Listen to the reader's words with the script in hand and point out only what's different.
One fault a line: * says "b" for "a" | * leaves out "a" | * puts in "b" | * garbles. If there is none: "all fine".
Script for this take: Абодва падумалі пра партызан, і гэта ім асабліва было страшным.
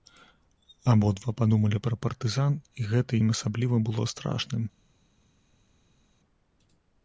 all fine